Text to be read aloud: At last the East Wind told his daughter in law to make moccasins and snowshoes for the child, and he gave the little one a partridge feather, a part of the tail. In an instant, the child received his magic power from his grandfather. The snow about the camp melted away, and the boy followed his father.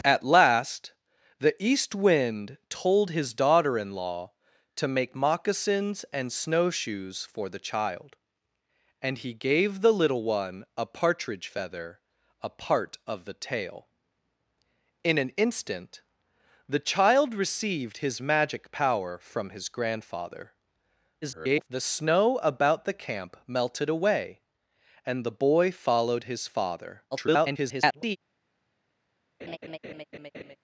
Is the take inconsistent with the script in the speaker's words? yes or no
yes